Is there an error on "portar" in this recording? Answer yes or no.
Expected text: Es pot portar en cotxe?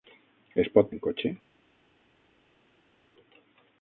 yes